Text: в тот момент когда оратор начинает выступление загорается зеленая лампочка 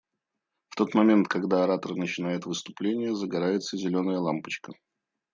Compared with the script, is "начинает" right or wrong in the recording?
right